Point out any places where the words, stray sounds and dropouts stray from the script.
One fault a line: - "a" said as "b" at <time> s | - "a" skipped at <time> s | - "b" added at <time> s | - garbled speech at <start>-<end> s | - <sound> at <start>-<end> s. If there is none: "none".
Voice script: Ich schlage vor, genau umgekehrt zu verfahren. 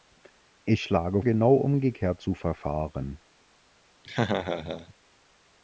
- "vor" skipped at 1.2 s
- laugh at 4.0-4.9 s